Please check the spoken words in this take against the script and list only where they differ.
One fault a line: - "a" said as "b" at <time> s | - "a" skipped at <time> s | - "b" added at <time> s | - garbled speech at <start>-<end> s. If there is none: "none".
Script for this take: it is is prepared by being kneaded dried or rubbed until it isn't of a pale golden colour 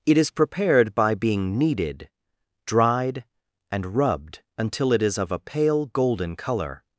- "is" skipped at 0.3 s
- "or" said as "and" at 3.7 s
- "isn't" said as "is" at 5.0 s